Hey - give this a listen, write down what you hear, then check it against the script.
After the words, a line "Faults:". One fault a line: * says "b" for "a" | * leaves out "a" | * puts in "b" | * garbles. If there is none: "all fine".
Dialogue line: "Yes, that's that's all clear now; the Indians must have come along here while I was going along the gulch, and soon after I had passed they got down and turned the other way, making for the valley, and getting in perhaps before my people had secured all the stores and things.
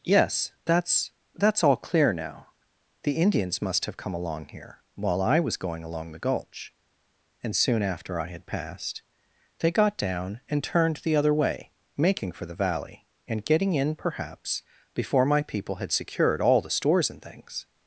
"Yes, that's that's all clear now; the Indians must have come along here while I was going along the gulch, and soon after I had passed they got down and turned the other way, making for the valley, and getting in perhaps before my people had secured all the stores and things.
Faults:
all fine